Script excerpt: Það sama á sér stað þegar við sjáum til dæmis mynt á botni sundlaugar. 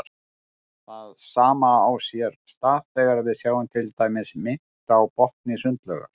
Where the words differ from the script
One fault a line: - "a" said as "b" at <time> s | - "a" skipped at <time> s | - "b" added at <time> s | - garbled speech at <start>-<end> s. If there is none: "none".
none